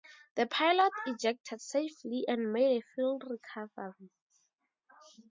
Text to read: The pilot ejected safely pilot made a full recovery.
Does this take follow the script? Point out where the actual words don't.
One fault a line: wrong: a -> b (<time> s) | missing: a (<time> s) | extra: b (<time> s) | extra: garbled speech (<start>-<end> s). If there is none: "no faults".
wrong: pilot -> and (2.3 s)